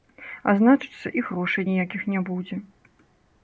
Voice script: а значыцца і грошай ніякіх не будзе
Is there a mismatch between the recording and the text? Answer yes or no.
no